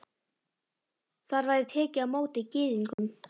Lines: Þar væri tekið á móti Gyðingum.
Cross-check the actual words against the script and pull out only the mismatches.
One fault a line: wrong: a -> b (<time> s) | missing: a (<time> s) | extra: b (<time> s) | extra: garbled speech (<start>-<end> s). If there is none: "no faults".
no faults